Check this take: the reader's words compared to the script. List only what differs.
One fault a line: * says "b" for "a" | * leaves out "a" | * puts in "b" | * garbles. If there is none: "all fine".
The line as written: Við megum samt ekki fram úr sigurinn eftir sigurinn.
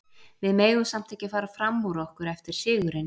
* puts in "fara"
* says "okkur" for "sigurinn"